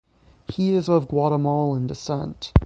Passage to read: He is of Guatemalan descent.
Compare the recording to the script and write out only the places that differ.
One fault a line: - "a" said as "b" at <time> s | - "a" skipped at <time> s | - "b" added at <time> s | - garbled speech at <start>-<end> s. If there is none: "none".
none